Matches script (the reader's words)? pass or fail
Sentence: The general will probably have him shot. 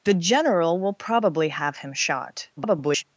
fail